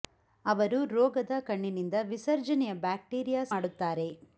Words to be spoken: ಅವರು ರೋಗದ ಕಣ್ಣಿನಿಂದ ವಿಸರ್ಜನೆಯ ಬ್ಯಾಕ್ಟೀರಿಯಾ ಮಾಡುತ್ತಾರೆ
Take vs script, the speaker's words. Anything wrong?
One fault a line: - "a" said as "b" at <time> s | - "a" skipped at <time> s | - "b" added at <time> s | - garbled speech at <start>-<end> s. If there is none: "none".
none